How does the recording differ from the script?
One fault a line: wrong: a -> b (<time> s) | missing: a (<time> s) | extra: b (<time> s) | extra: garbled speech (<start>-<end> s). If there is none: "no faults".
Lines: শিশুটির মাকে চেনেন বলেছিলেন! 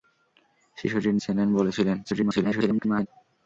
missing: মাকে (1.1 s)
extra: garbled speech (2.0-3.1 s)